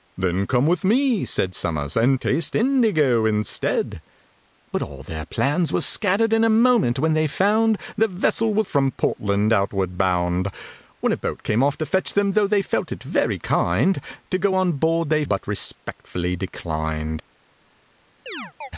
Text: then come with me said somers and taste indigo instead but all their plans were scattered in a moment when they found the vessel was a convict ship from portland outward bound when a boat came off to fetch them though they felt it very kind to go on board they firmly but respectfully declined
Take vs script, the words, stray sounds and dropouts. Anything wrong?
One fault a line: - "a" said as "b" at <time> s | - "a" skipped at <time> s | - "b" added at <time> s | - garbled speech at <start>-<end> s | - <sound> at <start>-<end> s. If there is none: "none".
- "a convict ship" skipped at 8.7 s
- "firmly" skipped at 15.2 s
- chirp at 18.3-18.7 s